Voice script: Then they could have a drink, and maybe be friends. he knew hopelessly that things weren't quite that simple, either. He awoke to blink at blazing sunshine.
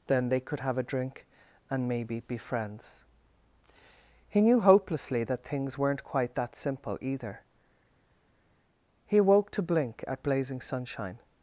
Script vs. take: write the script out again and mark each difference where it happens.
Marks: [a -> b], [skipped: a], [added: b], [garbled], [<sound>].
Then they could have a drink, and maybe be friends. he knew hopelessly that things weren't quite that simple, either. He awoke to blink at blazing sunshine.